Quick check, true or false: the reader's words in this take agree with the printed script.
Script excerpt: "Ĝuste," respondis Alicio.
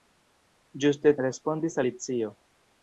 true